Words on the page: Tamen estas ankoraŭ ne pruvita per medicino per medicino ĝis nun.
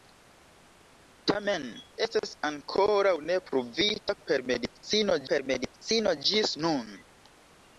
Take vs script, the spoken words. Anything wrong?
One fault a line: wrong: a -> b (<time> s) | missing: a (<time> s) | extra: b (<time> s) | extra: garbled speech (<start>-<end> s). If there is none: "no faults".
no faults